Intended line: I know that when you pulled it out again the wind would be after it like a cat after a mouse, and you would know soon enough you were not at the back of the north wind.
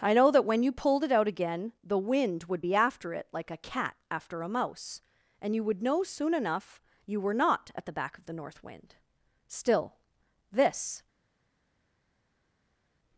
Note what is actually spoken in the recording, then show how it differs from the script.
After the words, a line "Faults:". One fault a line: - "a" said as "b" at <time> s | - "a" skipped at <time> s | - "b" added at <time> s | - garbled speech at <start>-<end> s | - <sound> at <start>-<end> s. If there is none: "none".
I know that when you pulled it out again the wind would be after it like a cat after a mouse, and you would know soon enough you were not at the back of the north wind. Still, this
Faults:
- "Still this" added at 9.5 s